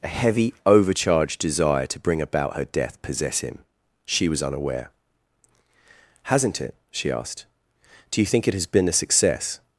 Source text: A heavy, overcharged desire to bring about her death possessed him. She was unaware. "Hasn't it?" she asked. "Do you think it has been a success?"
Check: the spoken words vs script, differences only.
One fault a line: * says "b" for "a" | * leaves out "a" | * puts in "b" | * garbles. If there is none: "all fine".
* says "possess" for "possessed"